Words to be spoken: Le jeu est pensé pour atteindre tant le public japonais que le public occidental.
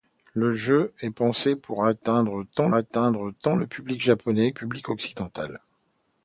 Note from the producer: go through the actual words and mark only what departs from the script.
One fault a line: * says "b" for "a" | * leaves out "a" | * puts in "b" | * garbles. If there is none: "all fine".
* puts in "atteindre tant"
* leaves out "que le"